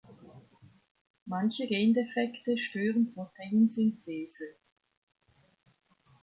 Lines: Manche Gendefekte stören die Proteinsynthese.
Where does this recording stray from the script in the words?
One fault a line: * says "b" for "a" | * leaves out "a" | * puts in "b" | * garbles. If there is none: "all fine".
* leaves out "die"